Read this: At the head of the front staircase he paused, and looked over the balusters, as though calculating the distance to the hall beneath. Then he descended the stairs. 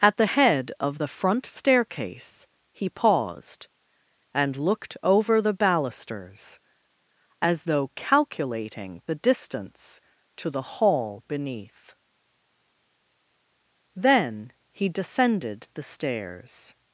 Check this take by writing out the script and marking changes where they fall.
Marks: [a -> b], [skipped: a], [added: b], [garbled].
At the head of the front staircase he paused, and looked over the balusters, as though calculating the distance to the hall beneath. Then he descended the stairs.